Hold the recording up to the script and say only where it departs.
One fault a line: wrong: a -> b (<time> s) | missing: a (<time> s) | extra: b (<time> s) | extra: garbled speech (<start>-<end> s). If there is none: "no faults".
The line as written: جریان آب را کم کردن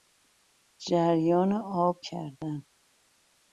missing: را کم (2.0 s)